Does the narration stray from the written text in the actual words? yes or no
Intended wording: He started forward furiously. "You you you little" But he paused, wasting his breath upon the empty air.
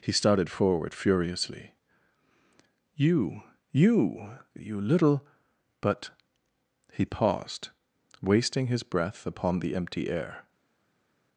no